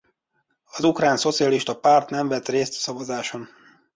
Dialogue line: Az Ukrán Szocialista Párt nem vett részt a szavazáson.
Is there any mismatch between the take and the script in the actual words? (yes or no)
no